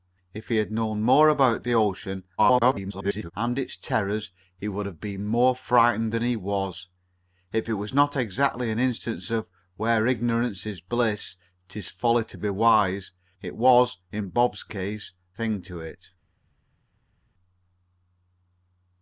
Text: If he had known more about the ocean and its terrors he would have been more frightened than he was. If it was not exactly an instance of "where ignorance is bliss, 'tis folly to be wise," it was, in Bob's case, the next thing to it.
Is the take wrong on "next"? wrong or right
wrong